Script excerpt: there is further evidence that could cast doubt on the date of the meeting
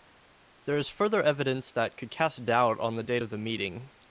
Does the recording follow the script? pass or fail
pass